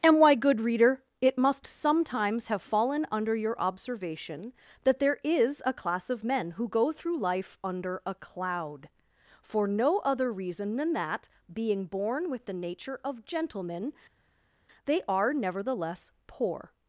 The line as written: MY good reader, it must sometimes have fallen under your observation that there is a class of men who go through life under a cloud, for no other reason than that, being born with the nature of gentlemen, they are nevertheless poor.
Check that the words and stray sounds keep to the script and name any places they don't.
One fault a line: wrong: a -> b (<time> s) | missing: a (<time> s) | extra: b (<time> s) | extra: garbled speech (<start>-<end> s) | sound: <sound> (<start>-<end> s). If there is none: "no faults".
wrong: MY -> And why (0.0 s)